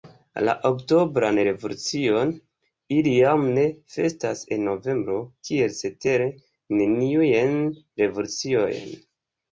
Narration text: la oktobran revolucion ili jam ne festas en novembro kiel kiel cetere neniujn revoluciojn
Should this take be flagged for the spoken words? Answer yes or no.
yes